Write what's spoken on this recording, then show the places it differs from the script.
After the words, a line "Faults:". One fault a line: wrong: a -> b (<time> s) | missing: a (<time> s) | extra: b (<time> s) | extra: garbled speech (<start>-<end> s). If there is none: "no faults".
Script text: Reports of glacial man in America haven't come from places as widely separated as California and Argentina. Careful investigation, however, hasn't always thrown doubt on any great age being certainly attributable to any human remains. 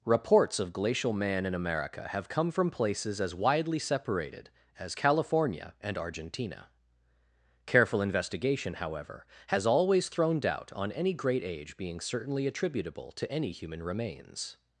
Reports of glacial man in America have come from places as widely separated as California and Argentina. Careful investigation, however, has always thrown doubt on any great age being certainly attributable to any human remains.
Faults:
wrong: haven't -> have (2.1 s)
wrong: hasn't -> has (9.5 s)